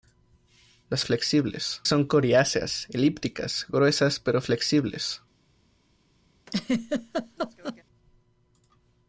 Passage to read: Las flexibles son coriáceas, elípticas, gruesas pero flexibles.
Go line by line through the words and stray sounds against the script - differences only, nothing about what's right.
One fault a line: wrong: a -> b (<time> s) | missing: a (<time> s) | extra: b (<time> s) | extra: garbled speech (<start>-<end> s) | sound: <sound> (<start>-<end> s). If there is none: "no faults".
sound: laugh (6.5-7.8 s)